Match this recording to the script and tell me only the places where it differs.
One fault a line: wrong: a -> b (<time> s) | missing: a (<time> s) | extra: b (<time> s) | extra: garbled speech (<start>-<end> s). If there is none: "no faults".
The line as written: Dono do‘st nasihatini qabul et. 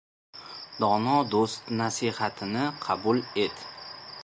no faults